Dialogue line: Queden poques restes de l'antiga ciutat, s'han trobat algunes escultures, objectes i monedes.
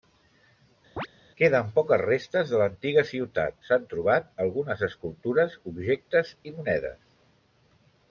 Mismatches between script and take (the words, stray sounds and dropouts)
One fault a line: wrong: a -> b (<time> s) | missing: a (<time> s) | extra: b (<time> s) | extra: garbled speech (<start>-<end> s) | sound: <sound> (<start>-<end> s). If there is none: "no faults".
sound: chirp (1.0-1.1 s)